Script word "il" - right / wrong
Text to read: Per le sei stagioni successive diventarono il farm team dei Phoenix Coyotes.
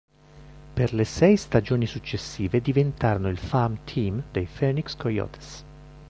right